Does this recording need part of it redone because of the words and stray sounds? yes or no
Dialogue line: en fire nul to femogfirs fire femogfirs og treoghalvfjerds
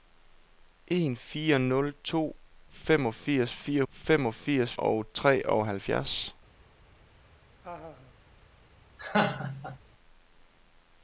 yes